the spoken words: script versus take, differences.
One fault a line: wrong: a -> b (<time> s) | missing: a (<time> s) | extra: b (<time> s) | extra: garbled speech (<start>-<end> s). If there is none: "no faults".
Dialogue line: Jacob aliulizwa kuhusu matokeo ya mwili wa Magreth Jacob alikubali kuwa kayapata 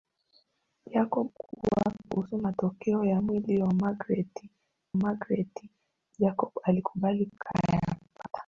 wrong: aliulizwa -> kuwa (1.3 s)
extra: Magreth (4.9 s)
missing: kuwa (7.3 s)